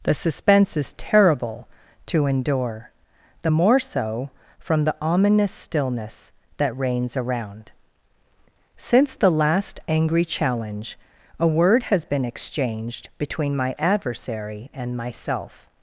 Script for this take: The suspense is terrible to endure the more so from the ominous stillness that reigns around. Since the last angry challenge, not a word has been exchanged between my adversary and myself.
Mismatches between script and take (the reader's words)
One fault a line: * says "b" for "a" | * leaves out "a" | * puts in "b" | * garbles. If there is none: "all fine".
* leaves out "not"